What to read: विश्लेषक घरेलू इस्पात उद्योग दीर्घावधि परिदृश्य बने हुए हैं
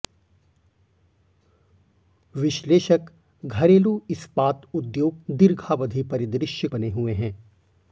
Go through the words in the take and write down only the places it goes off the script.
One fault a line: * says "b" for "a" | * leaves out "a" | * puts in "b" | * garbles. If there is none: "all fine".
all fine